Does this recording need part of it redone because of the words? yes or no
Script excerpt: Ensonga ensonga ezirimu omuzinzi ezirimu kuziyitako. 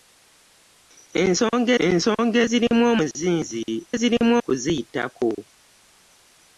no